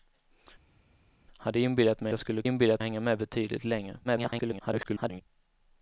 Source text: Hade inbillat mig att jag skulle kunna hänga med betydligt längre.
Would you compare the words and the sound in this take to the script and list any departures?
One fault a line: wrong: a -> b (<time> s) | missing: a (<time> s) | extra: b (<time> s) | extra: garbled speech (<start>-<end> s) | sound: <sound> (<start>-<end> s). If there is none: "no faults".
missing: att (2.1 s)
wrong: kunna -> inbillat (2.4 s)
extra: garbled speech (4.0-5.2 s)